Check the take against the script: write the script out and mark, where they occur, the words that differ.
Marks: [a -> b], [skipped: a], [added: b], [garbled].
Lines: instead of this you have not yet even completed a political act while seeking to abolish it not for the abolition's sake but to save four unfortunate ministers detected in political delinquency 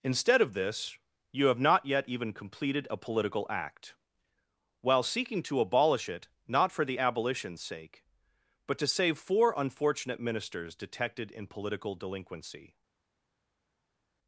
instead of this you have not yet even completed a political act while seeking to abolish it not for the abolition's sake but to save four unfortunate ministers detected in political delinquency